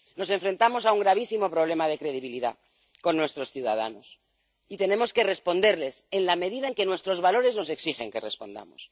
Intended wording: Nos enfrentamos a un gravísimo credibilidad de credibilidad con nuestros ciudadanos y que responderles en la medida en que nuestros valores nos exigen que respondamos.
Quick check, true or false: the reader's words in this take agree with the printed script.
false